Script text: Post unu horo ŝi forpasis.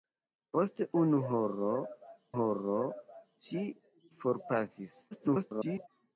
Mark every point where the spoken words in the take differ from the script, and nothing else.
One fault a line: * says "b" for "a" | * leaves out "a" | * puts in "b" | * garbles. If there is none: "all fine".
* puts in "horo"
* garbles